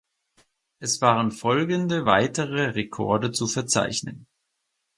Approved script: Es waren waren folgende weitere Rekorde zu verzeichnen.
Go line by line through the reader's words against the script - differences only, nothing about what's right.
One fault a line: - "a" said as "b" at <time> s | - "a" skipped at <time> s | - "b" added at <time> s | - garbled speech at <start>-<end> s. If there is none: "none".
- "waren" skipped at 1.3 s